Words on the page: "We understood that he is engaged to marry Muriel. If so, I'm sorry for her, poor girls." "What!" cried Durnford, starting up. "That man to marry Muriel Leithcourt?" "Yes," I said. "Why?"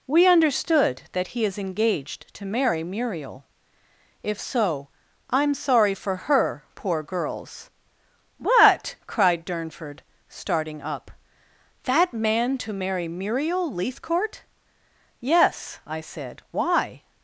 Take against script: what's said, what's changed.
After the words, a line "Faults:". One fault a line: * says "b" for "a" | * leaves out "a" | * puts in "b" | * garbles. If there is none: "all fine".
"We understood that he is engaged to marry Muriel. If so, I'm sorry for her, poor girls." "What!" cried Durnford, starting up. "That man to marry Muriel Leithcourt?" "Yes," I said. "Why?"
Faults:
all fine